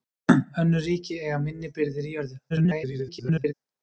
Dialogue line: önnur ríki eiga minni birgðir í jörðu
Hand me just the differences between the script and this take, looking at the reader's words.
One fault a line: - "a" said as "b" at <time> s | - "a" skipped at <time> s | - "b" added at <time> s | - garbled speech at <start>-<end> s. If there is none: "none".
- garbled speech at 2.5-3.5 s